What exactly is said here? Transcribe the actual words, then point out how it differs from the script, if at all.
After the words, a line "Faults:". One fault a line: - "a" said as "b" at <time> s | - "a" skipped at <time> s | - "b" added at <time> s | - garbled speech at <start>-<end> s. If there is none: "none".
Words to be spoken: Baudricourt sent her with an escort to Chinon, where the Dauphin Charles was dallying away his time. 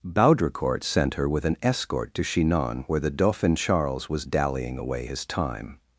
Baudricourt sent her with an escort to Chinon, where the Dauphin Charles was dallying away his time.
Faults:
none